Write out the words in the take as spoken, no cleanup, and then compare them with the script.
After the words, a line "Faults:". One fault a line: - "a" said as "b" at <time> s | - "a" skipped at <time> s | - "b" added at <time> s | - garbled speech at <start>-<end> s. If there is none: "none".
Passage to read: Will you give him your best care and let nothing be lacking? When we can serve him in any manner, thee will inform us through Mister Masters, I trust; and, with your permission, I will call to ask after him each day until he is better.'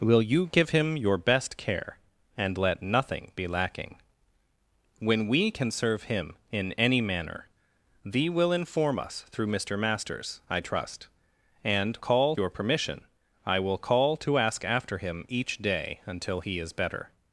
Will you give him your best care and let nothing be lacking? When we can serve him in any manner, thee will inform us through Mister Masters, I trust; and, call your permission, I will call to ask after him each day until he is better.'
Faults:
- "with" said as "call" at 12.0 s